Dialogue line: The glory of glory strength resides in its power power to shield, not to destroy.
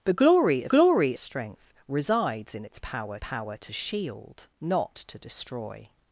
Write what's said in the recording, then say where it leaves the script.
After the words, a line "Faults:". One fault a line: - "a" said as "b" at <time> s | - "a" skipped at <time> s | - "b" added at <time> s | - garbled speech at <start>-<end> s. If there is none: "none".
The glory of glory strength resides in its power power to shield, not to destroy.
Faults:
none